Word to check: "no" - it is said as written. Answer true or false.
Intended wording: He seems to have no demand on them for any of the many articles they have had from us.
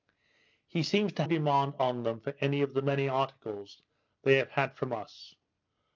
false